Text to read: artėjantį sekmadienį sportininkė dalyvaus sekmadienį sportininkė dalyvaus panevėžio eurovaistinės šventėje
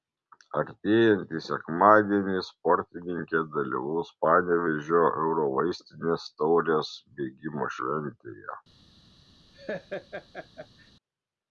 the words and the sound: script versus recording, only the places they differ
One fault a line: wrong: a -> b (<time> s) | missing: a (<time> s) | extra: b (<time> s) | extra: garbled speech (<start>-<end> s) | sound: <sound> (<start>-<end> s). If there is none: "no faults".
wrong: sekmadienį sportininkė dalyvaus panevėžio eurovaistinės -> panevėžio eurovaistinės taurės bėgimo (4.3 s)
sound: laugh (9.5-10.9 s)